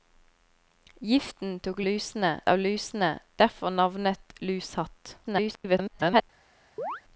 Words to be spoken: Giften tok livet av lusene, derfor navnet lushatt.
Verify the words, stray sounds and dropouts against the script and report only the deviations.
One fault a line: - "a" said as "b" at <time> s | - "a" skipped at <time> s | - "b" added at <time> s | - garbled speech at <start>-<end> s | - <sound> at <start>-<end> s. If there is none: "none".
- "livet" said as "lusene" at 1.8 s
- garbled speech at 5.2-6.2 s
- chirp at 6.8-7.0 s